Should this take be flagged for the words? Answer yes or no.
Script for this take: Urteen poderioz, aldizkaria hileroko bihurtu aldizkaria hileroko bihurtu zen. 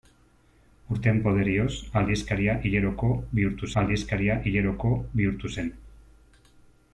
no